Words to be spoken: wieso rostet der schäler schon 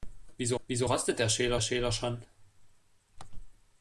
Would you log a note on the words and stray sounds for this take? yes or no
yes